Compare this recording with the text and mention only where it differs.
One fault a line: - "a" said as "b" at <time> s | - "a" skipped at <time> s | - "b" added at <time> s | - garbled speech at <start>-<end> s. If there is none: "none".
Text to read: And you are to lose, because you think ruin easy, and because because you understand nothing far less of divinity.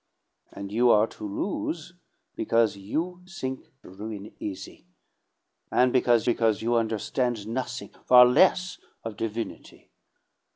none